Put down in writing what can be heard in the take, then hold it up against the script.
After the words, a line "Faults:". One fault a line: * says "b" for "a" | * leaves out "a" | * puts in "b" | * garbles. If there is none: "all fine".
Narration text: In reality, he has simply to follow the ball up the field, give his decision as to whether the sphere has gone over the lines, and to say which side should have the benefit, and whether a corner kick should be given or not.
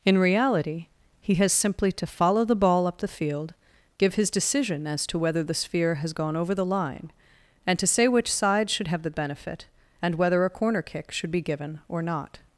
In reality, he has simply to follow the ball up the field, give his decision as to whether the sphere has gone over the line, and to say which side should have the benefit, and whether a corner kick should be given or not.
Faults:
* says "line" for "lines"